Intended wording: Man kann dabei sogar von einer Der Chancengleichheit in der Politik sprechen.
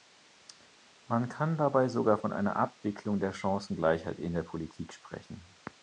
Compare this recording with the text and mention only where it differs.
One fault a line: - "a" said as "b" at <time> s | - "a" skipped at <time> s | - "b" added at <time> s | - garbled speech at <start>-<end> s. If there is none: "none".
- "Abwicklung" added at 2.5 s